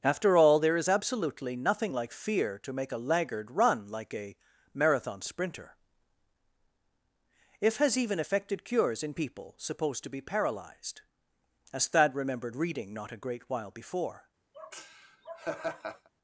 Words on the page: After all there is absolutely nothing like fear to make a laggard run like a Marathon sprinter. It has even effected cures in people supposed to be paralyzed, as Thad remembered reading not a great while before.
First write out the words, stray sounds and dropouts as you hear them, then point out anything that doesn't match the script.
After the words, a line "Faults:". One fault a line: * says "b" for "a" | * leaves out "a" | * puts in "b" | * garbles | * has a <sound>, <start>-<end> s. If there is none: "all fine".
After all there is absolutely nothing like fear to make a laggard run like a Marathon sprinter. If has even effected cures in people supposed to be paralyzed, as Thad remembered reading not a great while before.
Faults:
* says "If" for "It"
* has a laugh, 14.5-16.1 s